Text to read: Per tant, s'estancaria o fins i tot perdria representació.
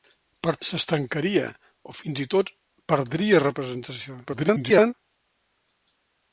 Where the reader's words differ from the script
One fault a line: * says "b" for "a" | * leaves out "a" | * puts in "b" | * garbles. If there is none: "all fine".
* leaves out "tant"
* garbles